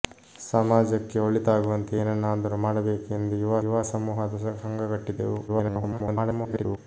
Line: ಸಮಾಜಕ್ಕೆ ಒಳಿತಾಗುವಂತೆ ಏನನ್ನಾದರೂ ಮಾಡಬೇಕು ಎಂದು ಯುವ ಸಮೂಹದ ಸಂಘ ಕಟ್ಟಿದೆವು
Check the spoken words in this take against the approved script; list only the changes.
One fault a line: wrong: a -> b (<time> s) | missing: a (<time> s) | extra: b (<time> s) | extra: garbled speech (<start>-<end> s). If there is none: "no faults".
extra: ಯುವ (3.6 s)
extra: garbled speech (5.5-6.8 s)